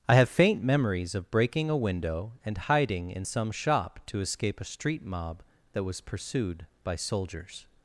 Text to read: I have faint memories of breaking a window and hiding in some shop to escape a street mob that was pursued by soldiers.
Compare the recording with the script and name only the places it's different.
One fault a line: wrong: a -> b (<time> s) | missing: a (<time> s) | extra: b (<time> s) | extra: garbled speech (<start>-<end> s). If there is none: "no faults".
no faults